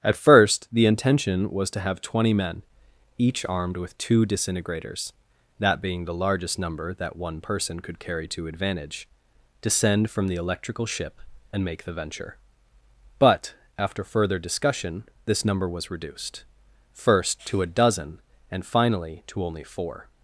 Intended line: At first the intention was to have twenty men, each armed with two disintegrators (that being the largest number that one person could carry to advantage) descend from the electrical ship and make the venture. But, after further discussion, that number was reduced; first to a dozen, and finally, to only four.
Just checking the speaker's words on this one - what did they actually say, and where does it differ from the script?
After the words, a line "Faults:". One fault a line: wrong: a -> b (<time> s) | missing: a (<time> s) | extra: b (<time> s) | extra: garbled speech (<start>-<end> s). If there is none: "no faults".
At first the intention was to have twenty men, each armed with two disintegrators (that being the largest number that one person could carry to advantage) descend from the electrical ship and make the venture. But, after further discussion, this number was reduced; first to a dozen, and finally, to only four.
Faults:
wrong: that -> this (15.2 s)